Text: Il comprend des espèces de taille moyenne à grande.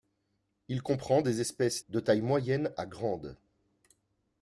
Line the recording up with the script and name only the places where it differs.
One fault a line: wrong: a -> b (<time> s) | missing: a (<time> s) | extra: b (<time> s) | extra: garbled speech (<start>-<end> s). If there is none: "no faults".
no faults